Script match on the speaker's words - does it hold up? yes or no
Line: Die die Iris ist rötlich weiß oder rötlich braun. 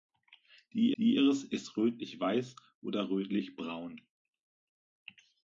yes